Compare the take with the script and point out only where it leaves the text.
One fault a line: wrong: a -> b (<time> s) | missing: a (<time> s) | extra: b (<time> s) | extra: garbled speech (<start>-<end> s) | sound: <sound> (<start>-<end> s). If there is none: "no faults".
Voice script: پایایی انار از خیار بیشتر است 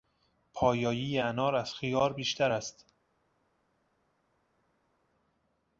no faults